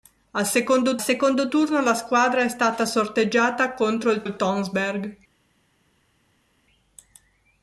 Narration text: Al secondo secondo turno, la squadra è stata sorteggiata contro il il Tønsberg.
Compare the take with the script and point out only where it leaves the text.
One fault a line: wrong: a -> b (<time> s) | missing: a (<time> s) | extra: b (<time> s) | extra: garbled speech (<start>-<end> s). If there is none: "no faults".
no faults